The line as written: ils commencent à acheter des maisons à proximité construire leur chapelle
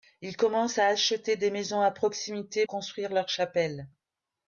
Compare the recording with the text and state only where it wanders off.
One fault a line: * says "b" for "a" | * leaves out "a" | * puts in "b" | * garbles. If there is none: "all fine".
all fine